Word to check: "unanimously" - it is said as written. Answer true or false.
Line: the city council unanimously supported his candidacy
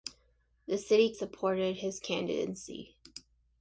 false